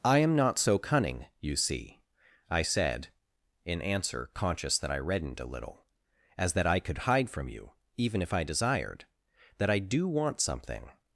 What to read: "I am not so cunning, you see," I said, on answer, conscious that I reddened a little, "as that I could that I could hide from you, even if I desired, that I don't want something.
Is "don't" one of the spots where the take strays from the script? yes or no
yes